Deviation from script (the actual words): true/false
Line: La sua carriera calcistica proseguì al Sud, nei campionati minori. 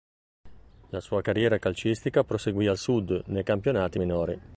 false